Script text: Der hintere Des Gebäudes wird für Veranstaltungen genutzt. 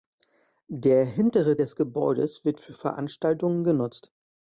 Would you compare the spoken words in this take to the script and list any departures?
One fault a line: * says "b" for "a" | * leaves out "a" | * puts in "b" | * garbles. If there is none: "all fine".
all fine